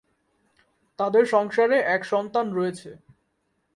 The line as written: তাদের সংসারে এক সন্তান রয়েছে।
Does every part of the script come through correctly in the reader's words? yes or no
yes